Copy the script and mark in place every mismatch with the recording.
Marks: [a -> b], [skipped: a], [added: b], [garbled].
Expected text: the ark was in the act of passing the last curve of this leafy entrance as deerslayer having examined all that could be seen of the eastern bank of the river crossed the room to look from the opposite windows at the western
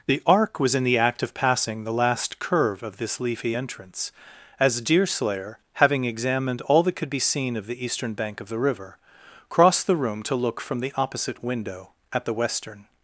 the ark was in the act of passing the last curve of this leafy entrance as deerslayer having examined all that could be seen of the eastern bank of the river crossed the room to look from the opposite [windows -> window] at the western